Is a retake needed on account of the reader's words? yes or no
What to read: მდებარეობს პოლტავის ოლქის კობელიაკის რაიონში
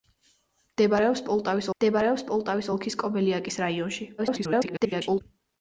yes